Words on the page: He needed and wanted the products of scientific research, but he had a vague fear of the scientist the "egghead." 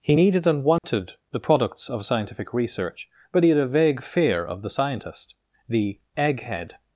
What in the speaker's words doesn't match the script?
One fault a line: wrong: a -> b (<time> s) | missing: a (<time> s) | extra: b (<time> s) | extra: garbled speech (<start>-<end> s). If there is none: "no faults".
no faults